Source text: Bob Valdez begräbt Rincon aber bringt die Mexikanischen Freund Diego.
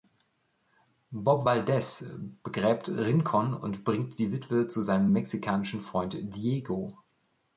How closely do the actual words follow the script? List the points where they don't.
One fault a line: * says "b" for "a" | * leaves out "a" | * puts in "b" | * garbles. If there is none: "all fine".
* says "und" for "aber"
* puts in "Witwe zu seinem"